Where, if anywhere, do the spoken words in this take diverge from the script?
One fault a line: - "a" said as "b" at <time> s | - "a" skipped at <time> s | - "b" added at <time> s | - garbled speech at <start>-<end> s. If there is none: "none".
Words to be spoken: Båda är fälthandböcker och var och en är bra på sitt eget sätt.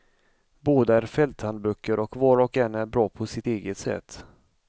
none